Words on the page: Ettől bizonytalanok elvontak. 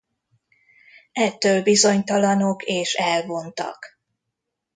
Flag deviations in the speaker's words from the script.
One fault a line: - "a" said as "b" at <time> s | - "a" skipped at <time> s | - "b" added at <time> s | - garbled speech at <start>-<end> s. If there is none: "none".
- "és" added at 2.6 s